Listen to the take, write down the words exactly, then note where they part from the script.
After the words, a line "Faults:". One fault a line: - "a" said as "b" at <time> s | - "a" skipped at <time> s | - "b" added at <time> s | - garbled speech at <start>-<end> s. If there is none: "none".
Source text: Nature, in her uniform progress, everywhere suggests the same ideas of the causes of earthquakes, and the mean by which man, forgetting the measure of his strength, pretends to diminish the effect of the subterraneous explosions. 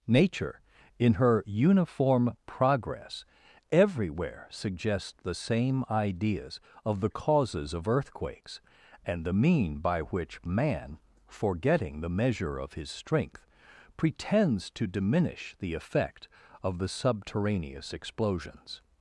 Nature, in her uniform progress, everywhere suggests the same ideas of the causes of earthquakes, and the mean by which man, forgetting the measure of his strength, pretends to diminish the effect of the subterraneous explosions.
Faults:
none